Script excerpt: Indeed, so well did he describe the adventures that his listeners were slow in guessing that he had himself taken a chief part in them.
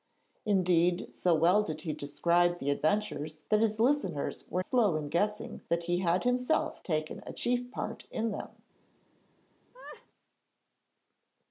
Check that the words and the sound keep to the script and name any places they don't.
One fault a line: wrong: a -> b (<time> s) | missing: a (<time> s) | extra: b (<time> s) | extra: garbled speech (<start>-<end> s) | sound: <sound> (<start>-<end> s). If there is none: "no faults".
sound: laugh (9.7-10.1 s)